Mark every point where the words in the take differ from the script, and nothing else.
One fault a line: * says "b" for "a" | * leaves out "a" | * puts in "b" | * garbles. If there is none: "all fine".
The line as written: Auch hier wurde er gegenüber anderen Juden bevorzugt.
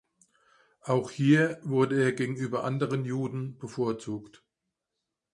all fine